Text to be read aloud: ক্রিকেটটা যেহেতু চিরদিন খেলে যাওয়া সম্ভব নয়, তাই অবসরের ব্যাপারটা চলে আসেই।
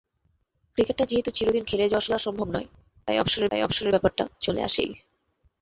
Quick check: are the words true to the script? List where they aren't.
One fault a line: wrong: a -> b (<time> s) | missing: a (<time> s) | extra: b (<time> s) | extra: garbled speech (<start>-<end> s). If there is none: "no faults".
extra: যাওয়া (2.1 s)
extra: তাই অবসরের (3.5 s)